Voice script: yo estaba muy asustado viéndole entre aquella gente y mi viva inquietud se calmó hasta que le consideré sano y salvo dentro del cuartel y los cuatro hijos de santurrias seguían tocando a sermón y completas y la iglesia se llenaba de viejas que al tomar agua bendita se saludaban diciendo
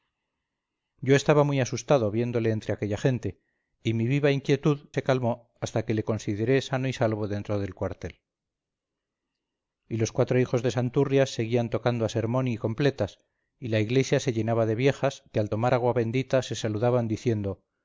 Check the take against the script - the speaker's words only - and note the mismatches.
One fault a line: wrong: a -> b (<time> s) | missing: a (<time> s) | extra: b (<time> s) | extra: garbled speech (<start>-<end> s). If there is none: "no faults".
no faults